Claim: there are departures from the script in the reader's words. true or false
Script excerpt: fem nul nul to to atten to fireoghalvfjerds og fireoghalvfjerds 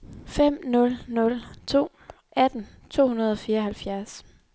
true